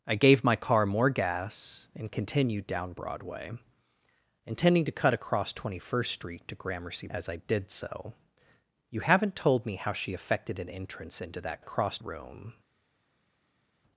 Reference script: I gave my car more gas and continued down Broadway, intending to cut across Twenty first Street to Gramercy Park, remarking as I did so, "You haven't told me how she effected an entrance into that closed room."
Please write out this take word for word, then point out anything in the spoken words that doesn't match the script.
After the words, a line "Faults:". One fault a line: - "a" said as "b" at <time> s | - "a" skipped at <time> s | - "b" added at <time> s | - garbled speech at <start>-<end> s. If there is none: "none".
I gave my car more gas and continued down Broadway, intending to cut across Twenty first Street to Gramercy As I did so, "You haven't told me how she effected an entrance into that across room."
Faults:
- "Park remarking" skipped at 7.1 s
- "closed" said as "across" at 11.6 s